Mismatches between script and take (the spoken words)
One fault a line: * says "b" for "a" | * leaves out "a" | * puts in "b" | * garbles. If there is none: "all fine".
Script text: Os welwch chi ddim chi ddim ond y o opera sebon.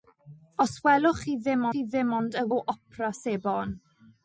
all fine